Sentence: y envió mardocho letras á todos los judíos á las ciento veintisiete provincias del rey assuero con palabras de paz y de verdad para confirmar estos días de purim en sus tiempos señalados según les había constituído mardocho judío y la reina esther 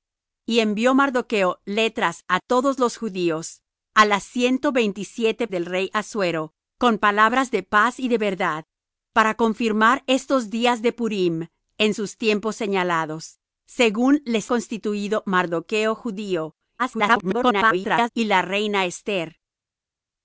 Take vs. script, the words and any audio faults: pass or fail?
fail